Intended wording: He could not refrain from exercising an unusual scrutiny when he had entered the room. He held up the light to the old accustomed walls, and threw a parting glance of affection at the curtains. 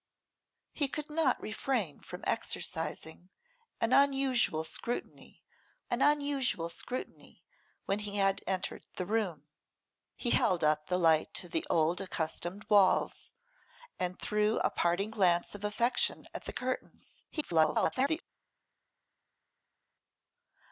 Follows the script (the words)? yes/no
no